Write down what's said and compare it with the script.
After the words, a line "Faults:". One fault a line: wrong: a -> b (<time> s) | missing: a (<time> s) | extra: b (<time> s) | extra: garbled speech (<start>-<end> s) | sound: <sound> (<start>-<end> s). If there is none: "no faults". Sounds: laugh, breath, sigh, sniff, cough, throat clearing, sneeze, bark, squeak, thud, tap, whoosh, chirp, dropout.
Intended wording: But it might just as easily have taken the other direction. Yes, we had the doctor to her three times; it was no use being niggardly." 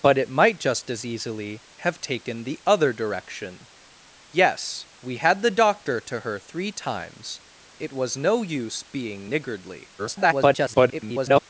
But it might just as easily have taken the other direction. Yes, we had the doctor to her three times; it was no use being niggardly." [garbled]
Faults:
extra: garbled speech (10.0-11.4 s)